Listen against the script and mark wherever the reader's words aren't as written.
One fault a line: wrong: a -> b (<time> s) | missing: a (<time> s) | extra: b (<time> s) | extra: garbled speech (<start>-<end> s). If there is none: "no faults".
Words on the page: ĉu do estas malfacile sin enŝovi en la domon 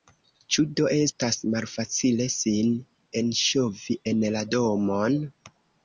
no faults